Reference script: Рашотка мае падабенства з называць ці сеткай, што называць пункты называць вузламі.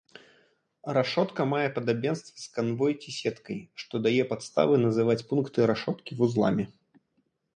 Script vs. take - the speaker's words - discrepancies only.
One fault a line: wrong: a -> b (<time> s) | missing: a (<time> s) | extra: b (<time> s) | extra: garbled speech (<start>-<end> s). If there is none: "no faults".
wrong: называць -> канвой (2.5 s)
extra: дае падставы (4.1 s)
wrong: называць -> рашоткі (5.7 s)